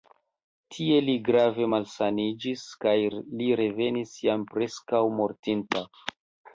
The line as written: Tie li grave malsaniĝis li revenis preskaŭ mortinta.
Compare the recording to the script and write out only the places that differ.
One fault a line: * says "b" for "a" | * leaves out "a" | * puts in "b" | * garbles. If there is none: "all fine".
* puts in "kaj"
* puts in "jam"